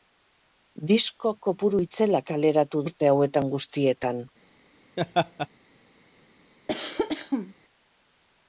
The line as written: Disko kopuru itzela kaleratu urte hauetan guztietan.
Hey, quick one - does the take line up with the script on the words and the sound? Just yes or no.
no